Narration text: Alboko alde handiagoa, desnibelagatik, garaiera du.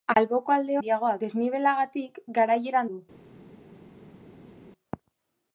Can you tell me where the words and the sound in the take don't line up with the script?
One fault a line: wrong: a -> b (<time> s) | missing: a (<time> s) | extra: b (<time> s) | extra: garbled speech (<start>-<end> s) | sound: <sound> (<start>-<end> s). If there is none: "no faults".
no faults